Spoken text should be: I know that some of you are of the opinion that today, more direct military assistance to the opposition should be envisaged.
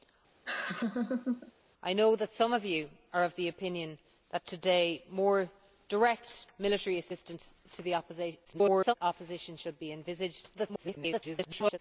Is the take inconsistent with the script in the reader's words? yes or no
yes